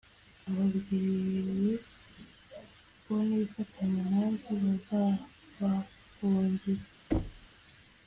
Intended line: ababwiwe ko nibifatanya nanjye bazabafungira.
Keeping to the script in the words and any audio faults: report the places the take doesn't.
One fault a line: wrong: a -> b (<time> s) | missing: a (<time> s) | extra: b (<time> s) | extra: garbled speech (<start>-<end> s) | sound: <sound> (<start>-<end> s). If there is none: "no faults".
sound: thud (7.1-7.5 s)